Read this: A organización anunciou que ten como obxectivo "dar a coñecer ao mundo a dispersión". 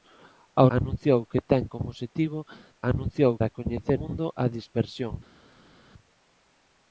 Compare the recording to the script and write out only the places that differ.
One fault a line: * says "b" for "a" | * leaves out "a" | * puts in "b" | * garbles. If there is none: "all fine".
* leaves out "organización"
* says "anunciou" for "dar"
* leaves out "ao"